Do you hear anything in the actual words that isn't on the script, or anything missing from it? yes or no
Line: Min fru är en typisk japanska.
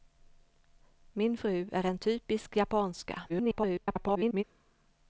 yes